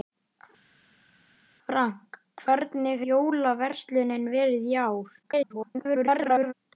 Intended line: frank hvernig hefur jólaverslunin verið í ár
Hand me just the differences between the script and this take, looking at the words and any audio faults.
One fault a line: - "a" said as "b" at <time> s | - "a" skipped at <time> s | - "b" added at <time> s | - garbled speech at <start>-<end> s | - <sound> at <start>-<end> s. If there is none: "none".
- "hefur" skipped at 3.0 s
- garbled speech at 5.2-6.5 s